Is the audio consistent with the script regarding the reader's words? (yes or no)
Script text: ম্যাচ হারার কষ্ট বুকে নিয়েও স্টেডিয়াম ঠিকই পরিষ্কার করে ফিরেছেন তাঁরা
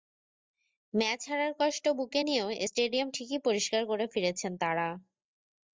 yes